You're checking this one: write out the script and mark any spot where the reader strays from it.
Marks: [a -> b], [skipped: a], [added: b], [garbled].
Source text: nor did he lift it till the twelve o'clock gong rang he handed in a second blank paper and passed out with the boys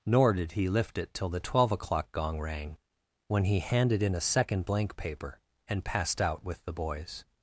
nor did he lift it till the twelve o'clock gong rang [added: when] he handed in a second blank paper and passed out with the boys